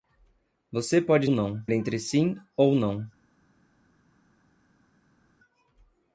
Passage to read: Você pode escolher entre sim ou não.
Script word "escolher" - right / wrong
wrong